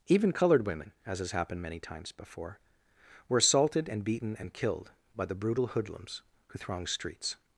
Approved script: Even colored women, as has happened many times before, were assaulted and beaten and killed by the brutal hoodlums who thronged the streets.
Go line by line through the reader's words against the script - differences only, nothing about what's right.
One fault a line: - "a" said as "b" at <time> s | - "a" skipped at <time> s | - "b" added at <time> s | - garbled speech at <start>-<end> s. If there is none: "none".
- "the" skipped at 6.9 s